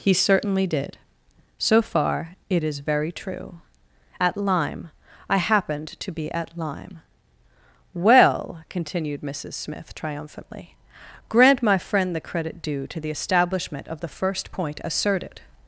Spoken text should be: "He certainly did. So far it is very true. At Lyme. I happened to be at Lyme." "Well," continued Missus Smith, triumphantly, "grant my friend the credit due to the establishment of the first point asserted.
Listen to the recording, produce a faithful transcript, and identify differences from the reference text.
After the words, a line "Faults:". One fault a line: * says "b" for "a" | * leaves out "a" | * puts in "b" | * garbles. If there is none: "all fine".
"He certainly did. So far it is very true. At Lyme. I happened to be at Lyme." "Well," continued Missus Smith, triumphantly, "grant my friend the credit due to the establishment of the first point asserted.
Faults:
all fine